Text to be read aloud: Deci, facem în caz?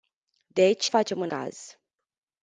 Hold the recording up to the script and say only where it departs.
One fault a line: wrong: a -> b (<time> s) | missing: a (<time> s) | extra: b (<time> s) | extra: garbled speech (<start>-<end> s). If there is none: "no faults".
no faults